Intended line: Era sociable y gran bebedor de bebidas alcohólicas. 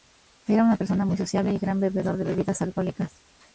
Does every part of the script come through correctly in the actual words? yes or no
no